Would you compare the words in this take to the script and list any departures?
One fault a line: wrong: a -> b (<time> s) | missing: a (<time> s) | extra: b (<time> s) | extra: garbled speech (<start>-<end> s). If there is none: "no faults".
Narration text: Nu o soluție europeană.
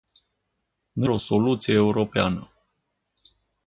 no faults